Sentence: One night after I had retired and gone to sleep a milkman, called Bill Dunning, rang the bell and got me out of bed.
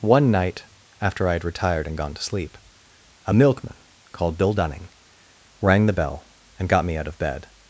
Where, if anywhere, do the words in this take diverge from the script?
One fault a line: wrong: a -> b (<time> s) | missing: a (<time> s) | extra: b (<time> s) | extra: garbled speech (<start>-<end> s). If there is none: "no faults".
no faults